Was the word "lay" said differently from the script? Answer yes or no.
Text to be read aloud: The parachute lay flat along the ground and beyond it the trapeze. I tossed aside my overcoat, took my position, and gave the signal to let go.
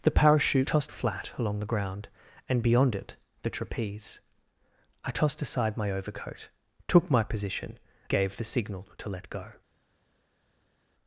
yes